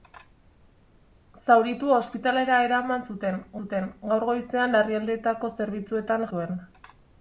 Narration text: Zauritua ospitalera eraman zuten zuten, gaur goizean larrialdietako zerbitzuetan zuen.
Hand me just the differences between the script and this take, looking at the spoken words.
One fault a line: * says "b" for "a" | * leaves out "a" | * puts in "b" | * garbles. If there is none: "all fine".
all fine